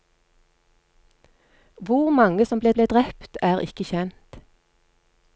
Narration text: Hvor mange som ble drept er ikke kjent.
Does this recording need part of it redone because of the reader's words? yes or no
yes